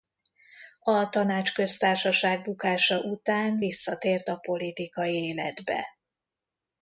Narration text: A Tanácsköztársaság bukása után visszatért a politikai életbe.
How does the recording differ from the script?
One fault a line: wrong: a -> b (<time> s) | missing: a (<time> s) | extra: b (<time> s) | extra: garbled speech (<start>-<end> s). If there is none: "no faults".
no faults